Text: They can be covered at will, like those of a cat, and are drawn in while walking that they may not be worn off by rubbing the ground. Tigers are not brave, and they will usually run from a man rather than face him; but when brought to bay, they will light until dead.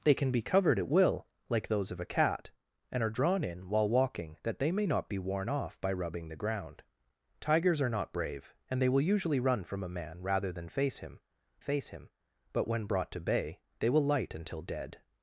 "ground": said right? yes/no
yes